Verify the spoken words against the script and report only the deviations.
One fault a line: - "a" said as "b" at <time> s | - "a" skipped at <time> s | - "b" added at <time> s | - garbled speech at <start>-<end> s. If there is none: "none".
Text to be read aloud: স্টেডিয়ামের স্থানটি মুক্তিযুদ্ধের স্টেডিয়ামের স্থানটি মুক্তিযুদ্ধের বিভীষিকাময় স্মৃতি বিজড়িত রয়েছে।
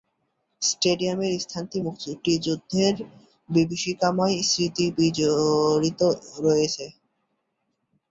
- "স্টেডিয়ামের স্থানটি মুক্তিযুদ্ধের" skipped at 3.0 s